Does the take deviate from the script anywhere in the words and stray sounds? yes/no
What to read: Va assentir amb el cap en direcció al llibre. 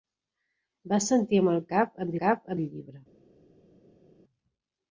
yes